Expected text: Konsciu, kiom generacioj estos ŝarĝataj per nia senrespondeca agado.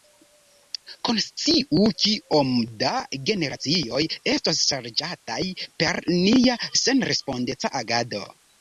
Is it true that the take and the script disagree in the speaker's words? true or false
true